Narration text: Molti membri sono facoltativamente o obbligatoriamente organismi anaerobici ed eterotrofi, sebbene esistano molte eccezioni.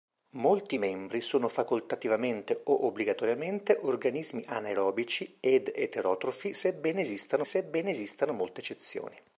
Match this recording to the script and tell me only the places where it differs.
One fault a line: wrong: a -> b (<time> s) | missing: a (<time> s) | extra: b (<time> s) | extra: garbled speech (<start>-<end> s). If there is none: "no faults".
extra: sebbene esistano (7.4 s)